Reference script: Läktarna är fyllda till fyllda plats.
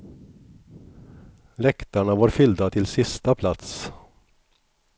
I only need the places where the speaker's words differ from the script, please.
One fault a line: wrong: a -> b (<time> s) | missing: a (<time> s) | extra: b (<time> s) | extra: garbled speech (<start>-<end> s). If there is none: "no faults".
wrong: är -> var (2.1 s)
wrong: fyllda -> sista (2.9 s)